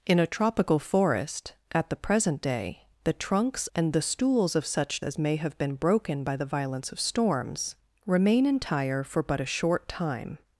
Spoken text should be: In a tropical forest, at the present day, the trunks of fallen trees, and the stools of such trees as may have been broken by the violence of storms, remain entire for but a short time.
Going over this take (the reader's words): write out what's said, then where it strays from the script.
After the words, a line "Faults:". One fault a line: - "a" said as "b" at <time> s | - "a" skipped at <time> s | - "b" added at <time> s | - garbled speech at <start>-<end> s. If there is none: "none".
In a tropical forest, at the present day, the trunks and the stools of such as may have been broken by the violence of storms, remain entire for but a short time.
Faults:
- "of fallen trees" skipped at 3.7 s
- "trees" skipped at 5.0 s